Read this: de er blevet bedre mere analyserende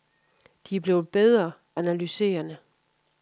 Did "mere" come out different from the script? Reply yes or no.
yes